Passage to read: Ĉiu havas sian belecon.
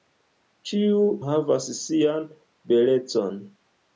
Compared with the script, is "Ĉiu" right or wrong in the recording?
right